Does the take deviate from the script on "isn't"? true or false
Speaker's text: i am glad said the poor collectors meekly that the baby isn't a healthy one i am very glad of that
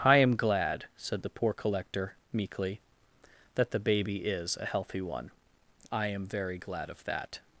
true